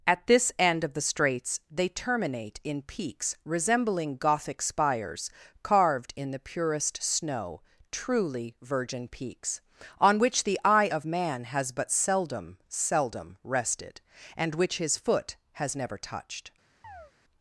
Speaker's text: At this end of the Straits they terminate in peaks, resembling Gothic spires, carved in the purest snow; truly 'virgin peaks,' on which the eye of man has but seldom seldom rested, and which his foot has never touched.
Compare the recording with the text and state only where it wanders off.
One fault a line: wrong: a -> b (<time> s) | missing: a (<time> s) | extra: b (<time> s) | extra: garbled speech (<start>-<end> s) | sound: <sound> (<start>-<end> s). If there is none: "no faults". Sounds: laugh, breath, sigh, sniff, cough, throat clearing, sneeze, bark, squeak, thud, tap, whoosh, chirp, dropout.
sound: chirp (16.8-17.1 s)